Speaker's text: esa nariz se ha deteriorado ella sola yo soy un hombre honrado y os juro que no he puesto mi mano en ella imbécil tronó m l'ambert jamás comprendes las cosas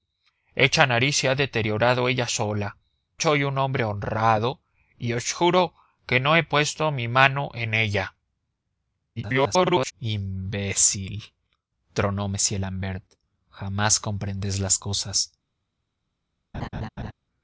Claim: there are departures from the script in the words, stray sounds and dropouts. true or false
true